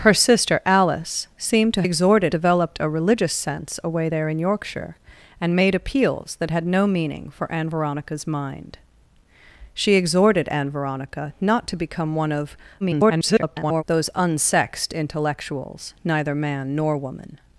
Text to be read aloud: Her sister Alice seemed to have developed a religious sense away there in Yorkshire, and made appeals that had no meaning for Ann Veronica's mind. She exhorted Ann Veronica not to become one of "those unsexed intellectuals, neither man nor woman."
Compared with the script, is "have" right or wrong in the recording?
wrong